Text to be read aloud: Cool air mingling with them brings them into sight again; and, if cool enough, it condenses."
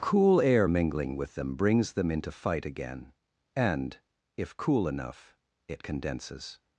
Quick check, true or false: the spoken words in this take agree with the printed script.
false